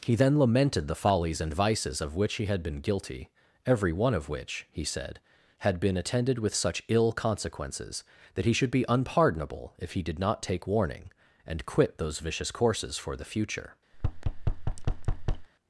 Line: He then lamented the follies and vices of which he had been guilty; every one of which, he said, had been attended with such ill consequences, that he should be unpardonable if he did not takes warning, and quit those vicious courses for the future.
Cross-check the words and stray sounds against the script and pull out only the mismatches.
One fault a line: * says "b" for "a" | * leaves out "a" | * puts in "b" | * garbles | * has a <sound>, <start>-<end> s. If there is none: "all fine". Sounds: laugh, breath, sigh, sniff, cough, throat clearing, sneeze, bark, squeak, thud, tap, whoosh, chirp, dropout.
* says "take" for "takes"
* has a thud, 13.9-15.5 s